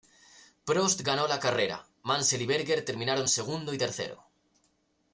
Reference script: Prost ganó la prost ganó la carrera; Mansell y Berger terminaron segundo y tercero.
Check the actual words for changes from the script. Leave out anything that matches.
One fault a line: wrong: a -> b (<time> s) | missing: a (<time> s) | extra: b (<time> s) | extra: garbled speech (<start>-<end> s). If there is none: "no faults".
missing: prost ganó la (1.4 s)